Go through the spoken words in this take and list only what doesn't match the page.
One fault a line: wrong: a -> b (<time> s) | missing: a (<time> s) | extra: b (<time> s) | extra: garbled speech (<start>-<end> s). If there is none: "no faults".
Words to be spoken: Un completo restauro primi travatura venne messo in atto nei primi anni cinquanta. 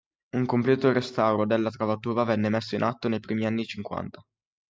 wrong: primi -> della (1.4 s)